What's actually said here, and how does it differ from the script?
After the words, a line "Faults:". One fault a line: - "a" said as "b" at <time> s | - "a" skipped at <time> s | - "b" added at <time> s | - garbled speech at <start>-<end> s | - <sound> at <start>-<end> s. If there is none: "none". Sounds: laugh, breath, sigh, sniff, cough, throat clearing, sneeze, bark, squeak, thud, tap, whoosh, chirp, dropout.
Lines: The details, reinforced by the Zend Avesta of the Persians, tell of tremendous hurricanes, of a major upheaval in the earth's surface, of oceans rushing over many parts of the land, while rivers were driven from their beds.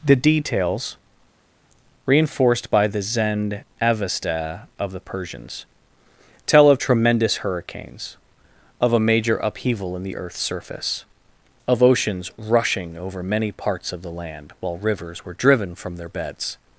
The details, reinforced by the Zend Avesta of the Persians, tell of tremendous hurricanes, of a major upheaval in the earth's surface, of oceans rushing over many parts of the land, while rivers were driven from their beds.
Faults:
none